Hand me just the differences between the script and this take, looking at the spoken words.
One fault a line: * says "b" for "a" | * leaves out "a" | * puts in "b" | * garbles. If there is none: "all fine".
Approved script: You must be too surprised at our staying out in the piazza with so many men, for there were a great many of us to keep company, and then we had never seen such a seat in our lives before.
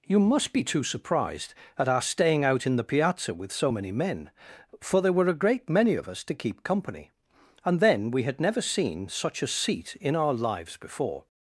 all fine